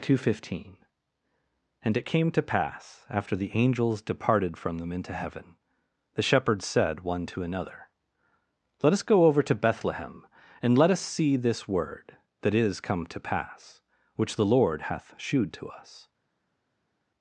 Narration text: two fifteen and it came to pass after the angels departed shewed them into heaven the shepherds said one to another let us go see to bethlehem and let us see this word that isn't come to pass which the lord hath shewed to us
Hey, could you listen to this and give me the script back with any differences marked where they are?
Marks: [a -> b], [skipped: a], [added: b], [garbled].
two fifteen and it came to pass after the angels departed [shewed -> from] them into heaven the shepherds said one to another let us go [see -> over] to bethlehem and let us see this word that [isn't -> is] come to pass which the lord hath shewed to us